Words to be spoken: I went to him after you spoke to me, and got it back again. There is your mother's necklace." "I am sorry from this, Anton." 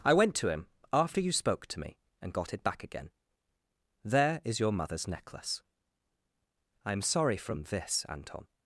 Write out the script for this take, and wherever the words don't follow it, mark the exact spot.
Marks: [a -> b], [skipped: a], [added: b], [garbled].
I went to him after you spoke to me, and got it back again. There is your mother's necklace." "I am sorry from this, Anton."